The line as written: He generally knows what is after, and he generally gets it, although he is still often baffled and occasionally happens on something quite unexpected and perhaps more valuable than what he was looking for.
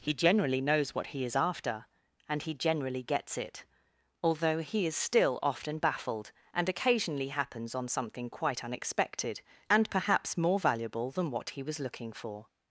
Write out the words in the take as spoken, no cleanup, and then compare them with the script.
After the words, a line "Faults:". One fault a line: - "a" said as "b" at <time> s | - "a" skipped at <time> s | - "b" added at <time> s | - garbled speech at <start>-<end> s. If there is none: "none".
He generally knows what he is after, and he generally gets it, although he is still often baffled and occasionally happens on something quite unexpected and perhaps more valuable than what he was looking for.
Faults:
- "he" added at 1.1 s